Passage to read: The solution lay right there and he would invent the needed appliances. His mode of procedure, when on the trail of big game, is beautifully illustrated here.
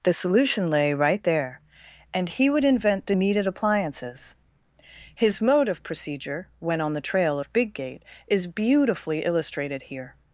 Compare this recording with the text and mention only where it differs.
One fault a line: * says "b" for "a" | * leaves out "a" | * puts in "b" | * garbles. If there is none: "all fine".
* says "gate" for "game"